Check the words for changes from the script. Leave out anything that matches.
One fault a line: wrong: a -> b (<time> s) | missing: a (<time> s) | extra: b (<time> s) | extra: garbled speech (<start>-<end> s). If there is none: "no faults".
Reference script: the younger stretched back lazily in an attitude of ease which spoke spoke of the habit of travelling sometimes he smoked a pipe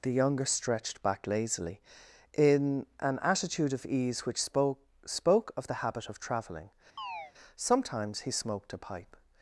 no faults